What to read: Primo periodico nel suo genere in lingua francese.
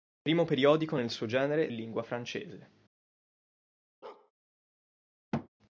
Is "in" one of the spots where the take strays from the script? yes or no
no